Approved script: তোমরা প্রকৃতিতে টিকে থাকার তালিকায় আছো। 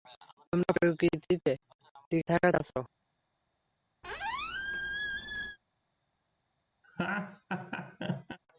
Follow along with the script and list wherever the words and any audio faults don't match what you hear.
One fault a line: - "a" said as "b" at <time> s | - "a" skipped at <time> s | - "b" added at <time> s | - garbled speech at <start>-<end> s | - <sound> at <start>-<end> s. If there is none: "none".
- "তালিকায়" skipped at 2.5 s
- squeak at 4.0-5.6 s
- laugh at 6.8-8.4 s